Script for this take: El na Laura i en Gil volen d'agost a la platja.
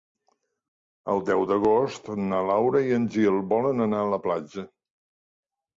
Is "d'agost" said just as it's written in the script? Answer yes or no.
no